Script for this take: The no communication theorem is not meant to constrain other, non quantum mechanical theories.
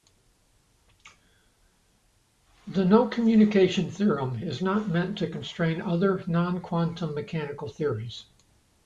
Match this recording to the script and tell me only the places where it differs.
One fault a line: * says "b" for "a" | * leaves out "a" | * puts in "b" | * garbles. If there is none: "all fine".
all fine